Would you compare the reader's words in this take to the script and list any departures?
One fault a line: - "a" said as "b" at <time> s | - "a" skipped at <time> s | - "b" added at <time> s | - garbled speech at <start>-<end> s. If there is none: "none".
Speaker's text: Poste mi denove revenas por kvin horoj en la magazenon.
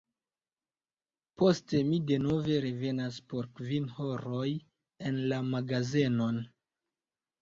none